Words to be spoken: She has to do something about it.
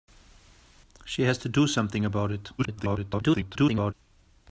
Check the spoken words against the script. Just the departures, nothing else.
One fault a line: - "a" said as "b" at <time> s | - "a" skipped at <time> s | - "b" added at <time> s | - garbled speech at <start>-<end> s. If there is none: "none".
- garbled speech at 2.6-3.9 s